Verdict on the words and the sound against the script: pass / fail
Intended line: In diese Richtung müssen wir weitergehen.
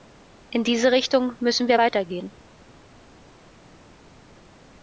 pass